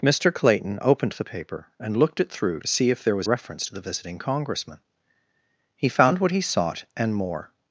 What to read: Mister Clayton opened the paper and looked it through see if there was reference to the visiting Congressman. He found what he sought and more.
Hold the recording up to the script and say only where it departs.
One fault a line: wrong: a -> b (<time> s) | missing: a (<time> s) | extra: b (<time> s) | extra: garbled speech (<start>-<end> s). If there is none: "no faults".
no faults